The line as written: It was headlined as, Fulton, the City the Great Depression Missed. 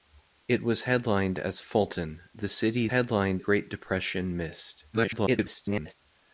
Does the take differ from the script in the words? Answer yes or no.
yes